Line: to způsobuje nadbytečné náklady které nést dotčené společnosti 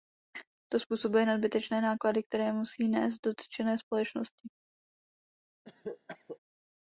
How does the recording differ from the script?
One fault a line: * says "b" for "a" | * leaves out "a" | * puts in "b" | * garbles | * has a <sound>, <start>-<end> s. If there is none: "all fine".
* puts in "musí"
* has a cough, 5.6-6.4 s